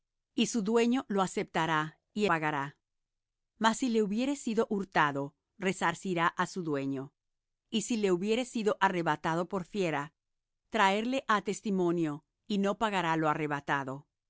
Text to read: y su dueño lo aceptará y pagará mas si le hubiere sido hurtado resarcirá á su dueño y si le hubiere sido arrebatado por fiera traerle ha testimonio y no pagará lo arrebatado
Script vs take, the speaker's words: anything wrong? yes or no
no